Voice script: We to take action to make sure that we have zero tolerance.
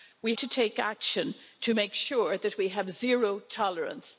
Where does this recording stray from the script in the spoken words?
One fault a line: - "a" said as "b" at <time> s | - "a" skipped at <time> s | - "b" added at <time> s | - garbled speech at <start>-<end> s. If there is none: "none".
none